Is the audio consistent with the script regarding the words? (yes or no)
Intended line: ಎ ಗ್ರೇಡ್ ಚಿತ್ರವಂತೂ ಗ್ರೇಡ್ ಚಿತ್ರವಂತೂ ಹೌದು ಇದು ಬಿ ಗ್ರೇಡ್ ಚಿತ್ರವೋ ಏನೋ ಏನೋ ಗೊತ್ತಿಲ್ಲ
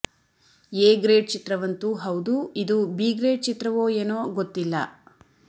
no